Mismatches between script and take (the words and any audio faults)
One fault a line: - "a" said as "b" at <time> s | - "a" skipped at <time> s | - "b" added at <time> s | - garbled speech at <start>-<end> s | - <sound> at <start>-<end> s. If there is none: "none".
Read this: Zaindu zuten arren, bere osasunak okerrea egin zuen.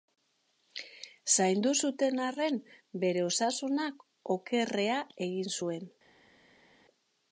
none